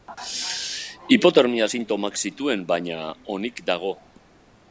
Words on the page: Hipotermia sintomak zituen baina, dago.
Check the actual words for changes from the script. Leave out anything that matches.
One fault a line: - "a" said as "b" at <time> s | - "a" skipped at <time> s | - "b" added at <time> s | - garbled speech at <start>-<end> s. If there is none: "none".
- "onik" added at 3.4 s